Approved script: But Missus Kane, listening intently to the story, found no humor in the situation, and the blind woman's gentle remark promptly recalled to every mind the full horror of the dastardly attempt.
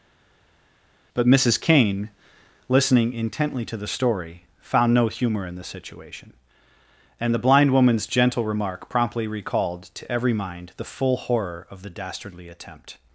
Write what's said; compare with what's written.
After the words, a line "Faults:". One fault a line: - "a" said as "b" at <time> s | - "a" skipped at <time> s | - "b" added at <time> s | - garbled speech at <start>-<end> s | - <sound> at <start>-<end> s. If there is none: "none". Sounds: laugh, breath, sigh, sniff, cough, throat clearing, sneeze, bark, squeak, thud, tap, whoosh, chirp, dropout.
But Missus Kane, listening intently to the story, found no humor in the situation, and the blind woman's gentle remark promptly recalled to every mind the full horror of the dastardly attempt.
Faults:
none